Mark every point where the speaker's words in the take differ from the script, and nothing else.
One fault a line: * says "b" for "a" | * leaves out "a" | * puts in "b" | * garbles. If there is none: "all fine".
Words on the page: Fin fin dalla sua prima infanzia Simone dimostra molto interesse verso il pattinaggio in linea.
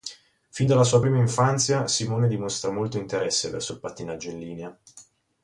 * leaves out "fin"